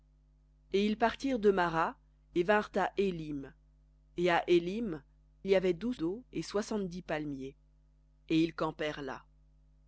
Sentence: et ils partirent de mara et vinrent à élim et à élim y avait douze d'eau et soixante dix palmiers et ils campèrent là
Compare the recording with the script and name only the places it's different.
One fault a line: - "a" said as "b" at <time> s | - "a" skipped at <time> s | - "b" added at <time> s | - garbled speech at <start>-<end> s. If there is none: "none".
none